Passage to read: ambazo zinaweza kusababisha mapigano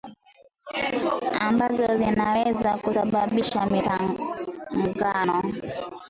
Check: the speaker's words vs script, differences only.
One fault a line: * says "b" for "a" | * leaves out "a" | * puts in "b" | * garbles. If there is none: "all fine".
all fine